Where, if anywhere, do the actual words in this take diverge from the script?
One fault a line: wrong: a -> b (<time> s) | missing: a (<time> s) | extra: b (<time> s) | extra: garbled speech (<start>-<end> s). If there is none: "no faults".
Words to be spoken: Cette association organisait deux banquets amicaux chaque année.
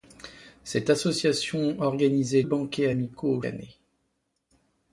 missing: deux (2.4 s)
missing: chaque (3.4 s)